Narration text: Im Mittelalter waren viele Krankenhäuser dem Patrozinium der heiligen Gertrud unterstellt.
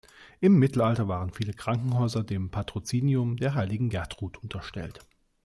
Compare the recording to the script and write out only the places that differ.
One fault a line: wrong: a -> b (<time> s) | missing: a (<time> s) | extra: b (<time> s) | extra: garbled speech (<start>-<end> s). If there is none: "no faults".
no faults